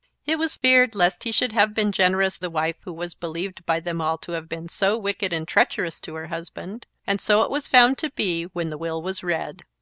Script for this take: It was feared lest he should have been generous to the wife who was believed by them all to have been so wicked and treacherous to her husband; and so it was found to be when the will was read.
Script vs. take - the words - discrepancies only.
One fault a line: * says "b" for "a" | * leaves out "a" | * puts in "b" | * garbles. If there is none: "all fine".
* leaves out "to"